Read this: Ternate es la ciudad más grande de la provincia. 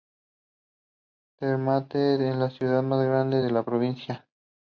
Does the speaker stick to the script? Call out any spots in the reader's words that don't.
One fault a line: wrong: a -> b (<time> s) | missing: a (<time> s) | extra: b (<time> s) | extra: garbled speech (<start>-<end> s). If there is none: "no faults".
no faults